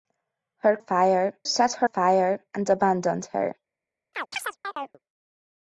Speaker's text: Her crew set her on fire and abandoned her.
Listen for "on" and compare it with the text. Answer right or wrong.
wrong